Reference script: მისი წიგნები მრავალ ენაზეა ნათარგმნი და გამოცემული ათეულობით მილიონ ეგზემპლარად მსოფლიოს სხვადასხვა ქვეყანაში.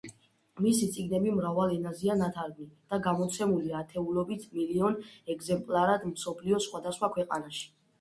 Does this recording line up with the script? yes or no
yes